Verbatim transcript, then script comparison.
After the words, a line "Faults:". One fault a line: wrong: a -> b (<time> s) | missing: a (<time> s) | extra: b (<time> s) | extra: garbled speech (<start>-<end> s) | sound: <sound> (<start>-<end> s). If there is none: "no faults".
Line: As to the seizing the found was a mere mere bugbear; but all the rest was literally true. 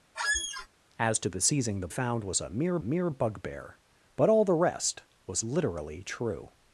As to the seizing the found was a mere mere bugbear; but all the rest was literally true.
Faults:
sound: squeak (0.1-0.7 s)